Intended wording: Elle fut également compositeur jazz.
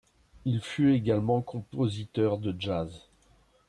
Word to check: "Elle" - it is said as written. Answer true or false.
false